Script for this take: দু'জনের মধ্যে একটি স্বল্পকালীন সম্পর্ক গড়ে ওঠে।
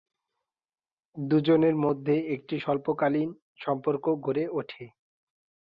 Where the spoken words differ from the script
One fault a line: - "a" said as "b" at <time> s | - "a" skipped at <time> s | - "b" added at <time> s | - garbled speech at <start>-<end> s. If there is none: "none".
none